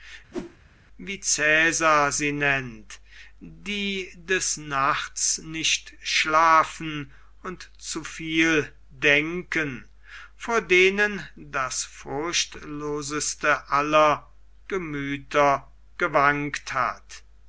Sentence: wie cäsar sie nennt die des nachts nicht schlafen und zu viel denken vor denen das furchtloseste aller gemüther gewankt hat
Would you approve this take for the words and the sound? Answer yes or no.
no